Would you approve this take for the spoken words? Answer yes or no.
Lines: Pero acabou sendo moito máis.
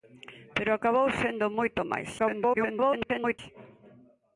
no